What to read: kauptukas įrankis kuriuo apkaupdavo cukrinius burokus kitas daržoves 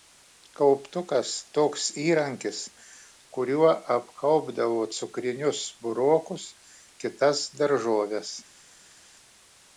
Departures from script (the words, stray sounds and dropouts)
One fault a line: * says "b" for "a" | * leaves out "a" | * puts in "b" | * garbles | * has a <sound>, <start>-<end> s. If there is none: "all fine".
* puts in "toks"